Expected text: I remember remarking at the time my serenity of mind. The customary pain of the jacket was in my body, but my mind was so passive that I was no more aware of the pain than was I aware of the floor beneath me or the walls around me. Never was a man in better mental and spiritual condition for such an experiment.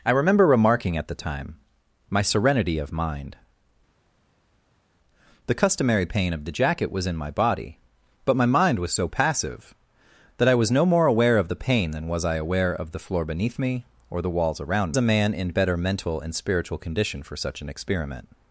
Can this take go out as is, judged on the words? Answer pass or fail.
fail